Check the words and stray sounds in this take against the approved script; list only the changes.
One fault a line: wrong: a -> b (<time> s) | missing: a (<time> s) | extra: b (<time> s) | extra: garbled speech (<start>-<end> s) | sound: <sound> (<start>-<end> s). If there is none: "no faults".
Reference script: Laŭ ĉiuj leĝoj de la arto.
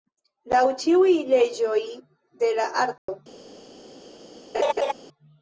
sound: dropout (3.0-3.1 s)
sound: laugh (4.5-4.9 s)